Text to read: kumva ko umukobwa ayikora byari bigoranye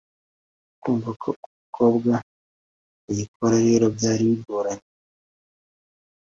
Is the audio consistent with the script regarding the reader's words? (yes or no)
no